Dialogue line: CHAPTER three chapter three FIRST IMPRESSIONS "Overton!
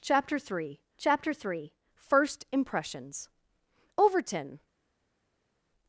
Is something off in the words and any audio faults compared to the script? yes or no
no